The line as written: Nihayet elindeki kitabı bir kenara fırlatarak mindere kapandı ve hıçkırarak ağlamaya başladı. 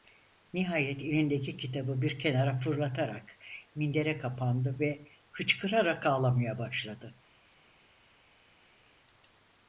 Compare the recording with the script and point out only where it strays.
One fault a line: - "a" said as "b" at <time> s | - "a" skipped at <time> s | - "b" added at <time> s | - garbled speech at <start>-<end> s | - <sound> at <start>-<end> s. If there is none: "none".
none